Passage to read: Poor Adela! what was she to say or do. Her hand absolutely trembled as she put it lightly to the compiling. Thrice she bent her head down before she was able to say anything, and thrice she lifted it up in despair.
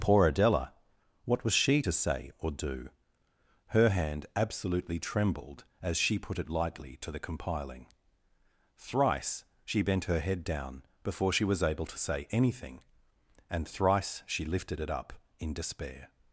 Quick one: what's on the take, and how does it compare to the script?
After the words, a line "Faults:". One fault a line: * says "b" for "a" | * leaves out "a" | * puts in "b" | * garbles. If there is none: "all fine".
Poor Adela! what was she to say or do. Her hand absolutely trembled as she put it lightly to the compiling. Thrice she bent her head down before she was able to say anything, and thrice she lifted it up in despair.
Faults:
all fine